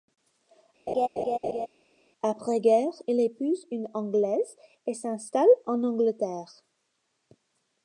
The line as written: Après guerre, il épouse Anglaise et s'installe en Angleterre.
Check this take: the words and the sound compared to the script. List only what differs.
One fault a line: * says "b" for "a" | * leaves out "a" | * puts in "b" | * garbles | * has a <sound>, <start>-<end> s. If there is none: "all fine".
* has a laugh, 0.9-1.7 s
* puts in "une"